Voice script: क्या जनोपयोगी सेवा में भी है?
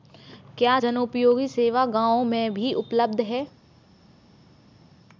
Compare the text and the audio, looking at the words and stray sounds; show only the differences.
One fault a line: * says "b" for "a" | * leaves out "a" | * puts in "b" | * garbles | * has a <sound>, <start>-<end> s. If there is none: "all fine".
* puts in "गाँव"
* puts in "उपलब्ध"